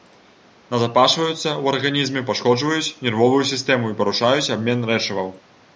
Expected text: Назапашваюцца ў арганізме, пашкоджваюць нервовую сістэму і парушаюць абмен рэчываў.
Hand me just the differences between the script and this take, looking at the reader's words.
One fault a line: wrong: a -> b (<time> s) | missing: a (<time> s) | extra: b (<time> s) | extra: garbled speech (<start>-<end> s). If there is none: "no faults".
no faults